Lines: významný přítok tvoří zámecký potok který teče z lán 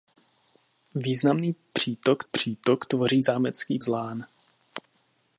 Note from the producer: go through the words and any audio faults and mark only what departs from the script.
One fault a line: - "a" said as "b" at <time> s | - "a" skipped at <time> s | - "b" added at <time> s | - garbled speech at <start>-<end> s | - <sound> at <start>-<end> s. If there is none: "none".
- "přítok" added at 2.3 s
- "potok který teče" skipped at 3.8 s